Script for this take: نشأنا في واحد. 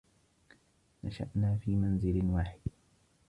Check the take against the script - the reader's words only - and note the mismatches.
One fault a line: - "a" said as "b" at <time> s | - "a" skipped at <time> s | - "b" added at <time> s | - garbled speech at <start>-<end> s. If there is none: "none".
- "منزل" added at 1.7 s